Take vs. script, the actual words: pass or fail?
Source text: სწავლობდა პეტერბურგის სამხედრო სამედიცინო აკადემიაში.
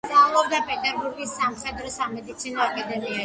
pass